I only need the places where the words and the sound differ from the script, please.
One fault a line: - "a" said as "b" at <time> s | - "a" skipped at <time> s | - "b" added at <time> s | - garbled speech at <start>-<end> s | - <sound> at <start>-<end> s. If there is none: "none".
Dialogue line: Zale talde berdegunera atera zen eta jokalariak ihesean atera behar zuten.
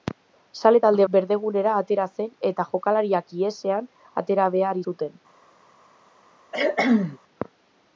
- cough at 6.5-7.2 s